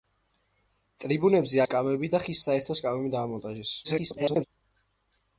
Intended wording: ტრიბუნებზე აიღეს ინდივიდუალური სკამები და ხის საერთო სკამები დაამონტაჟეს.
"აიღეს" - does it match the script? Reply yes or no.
no